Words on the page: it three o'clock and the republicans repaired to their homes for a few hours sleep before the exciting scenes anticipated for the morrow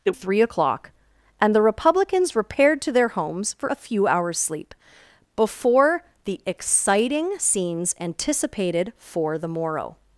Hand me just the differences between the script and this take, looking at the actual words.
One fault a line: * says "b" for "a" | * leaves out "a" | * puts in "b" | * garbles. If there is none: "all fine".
all fine